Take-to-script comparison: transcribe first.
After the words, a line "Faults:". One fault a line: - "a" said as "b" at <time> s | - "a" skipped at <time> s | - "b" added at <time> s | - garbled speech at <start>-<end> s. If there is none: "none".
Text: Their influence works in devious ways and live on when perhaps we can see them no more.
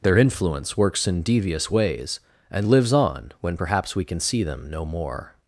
Their influence works in devious ways and lives on when perhaps we can see them no more.
Faults:
- "live" said as "lives" at 2.7 s